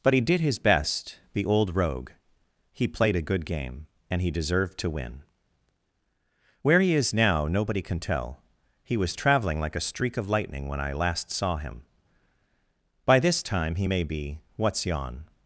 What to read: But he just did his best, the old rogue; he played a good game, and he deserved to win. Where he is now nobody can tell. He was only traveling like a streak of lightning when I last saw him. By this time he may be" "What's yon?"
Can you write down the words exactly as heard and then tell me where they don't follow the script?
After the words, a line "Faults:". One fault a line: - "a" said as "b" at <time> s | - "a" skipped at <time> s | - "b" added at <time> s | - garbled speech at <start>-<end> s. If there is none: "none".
But he did his best, the old rogue; he played a good game, and he deserved to win. Where he is now nobody can tell. He was traveling like a streak of lightning when I last saw him. By this time he may be" "What's yon?"
Faults:
- "just" skipped at 0.2 s
- "only" skipped at 9.1 s